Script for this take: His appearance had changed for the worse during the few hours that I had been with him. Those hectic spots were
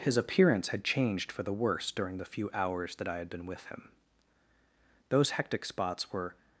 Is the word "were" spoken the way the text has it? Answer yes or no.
yes